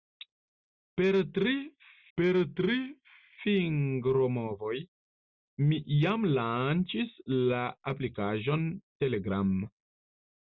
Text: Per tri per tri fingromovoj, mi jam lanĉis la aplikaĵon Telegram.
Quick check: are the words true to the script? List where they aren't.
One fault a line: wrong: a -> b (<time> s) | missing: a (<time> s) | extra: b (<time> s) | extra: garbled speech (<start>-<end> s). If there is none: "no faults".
no faults